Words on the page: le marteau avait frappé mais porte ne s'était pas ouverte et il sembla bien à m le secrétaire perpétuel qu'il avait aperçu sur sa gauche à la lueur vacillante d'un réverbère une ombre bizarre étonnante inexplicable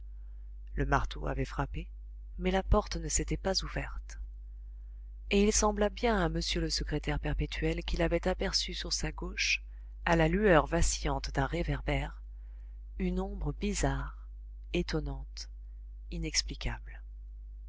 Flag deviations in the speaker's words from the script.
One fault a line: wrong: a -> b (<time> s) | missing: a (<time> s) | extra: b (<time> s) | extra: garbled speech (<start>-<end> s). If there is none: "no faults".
extra: la (2.5 s)